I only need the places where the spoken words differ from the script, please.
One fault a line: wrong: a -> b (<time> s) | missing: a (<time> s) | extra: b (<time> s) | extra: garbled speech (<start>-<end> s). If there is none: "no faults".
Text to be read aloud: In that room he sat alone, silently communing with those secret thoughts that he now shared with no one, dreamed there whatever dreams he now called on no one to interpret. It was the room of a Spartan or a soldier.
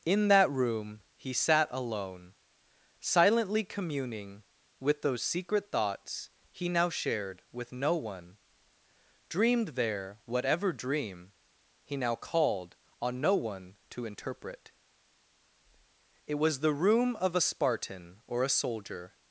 missing: that (6.3 s)
wrong: dreams -> dream (10.7 s)